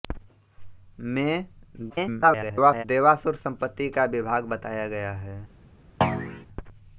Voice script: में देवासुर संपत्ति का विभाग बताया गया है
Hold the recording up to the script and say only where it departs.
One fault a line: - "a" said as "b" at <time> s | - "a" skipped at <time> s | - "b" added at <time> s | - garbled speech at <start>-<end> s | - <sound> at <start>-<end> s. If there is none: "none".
- garbled speech at 1.9-2.8 s
- thud at 6.0-6.5 s